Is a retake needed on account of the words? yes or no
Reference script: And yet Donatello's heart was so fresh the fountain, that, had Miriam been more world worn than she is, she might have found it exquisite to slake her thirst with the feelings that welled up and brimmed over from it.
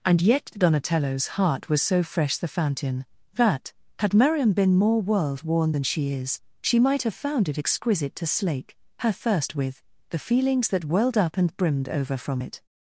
no